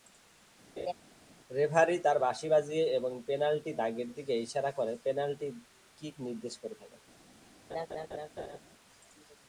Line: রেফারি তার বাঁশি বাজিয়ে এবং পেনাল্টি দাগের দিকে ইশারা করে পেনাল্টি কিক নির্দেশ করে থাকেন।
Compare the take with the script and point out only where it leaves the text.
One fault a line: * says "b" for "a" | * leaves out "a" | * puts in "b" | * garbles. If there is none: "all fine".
all fine